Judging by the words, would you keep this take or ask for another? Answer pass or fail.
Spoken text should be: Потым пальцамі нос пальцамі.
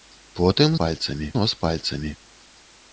pass